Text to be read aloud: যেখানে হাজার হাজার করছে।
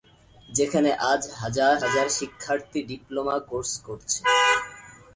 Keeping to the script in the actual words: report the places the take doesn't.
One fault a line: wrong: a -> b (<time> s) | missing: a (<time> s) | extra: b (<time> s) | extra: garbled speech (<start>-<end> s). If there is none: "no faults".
extra: আজ (1.1 s)
extra: শিক্ষার্থী ডিপ্লোমা কোর্স (2.2 s)